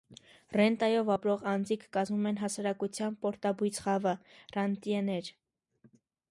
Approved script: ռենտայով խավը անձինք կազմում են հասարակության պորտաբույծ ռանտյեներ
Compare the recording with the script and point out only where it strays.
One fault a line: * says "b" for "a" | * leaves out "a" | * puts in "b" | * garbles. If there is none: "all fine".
* says "ապրող" for "խավը"
* puts in "խավը"